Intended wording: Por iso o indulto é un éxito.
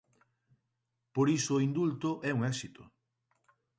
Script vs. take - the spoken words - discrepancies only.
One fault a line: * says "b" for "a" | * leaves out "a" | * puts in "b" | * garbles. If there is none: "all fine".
all fine